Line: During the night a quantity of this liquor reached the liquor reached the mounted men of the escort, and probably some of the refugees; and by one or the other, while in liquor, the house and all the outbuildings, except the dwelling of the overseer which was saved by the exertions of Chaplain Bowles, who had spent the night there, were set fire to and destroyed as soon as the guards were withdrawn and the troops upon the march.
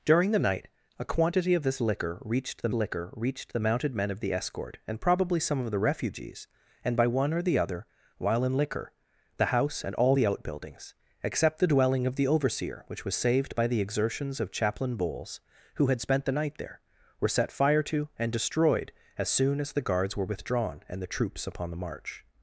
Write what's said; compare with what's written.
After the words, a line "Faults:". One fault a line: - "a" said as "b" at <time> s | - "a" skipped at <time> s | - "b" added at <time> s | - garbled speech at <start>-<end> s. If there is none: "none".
During the night a quantity of this liquor reached the liquor reached the mounted men of the escort, and probably some of the refugees; and by one or the other, while in liquor, the house and all the outbuildings, except the dwelling of the overseer which was saved by the exertions of Chaplain Bowles, who had spent the night there, were set fire to and destroyed as soon as the guards were withdrawn and the troops upon the march.
Faults:
none